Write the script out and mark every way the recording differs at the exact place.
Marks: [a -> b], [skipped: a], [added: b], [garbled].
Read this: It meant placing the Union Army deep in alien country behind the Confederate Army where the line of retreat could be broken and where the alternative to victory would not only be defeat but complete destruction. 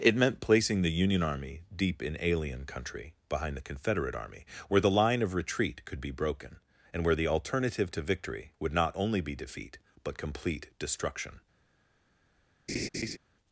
It meant placing the Union Army deep in alien country behind the Confederate Army where the line of retreat could be broken and where the alternative to victory would not only be defeat but complete destruction.